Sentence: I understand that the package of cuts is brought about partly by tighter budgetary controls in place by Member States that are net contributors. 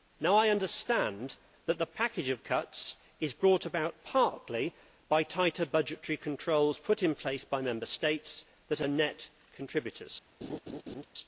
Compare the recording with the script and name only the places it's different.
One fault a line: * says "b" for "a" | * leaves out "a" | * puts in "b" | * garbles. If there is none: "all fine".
* puts in "put"